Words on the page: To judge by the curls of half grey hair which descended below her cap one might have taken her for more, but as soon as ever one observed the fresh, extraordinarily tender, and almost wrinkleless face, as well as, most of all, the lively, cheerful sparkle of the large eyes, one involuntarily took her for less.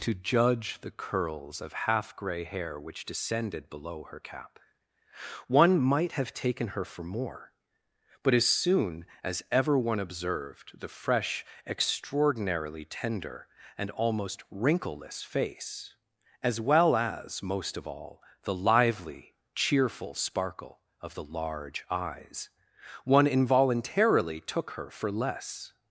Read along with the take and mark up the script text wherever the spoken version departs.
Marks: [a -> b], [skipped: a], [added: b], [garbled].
To judge [skipped: by] the curls of half grey hair which descended below her cap one might have taken her for more, but as soon as ever one observed the fresh, extraordinarily tender, and almost wrinkleless face, as well as, most of all, the lively, cheerful sparkle of the large eyes, one involuntarily took her for less.